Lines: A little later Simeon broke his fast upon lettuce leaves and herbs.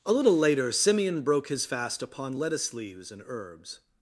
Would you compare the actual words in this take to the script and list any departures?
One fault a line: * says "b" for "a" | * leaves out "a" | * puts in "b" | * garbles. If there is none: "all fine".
all fine